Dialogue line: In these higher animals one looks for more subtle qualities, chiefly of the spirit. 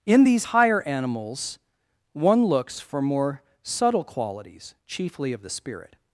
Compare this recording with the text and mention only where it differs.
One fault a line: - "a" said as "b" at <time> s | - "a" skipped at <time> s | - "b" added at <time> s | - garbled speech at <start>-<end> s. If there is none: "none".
none